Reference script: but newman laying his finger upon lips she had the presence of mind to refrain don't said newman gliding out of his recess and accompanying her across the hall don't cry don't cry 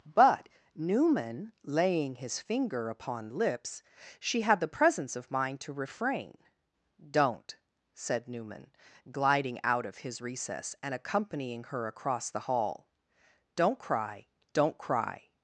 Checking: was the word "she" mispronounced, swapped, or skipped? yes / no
no